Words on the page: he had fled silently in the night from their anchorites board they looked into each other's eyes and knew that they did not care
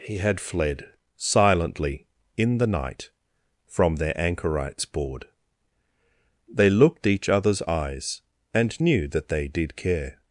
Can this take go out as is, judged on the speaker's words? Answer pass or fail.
fail